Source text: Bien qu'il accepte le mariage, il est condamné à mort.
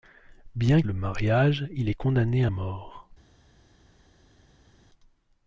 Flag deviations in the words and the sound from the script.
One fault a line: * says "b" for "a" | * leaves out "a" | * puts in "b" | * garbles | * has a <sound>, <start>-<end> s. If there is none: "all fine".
* leaves out "qu'il accepte"